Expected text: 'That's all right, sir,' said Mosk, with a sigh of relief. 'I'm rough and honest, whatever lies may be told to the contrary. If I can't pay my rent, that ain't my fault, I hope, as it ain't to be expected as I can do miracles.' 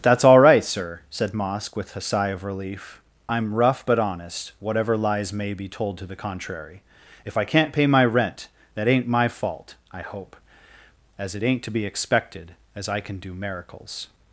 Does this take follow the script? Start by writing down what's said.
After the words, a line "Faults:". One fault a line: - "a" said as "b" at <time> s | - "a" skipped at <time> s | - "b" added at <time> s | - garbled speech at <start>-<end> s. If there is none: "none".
'That's all right, sir,' said Mosk, with a sigh of relief. 'I'm rough but honest, whatever lies may be told to the contrary. If I can't pay my rent, that ain't my fault, I hope, as it ain't to be expected as I can do miracles.'
Faults:
- "and" said as "but" at 3.8 s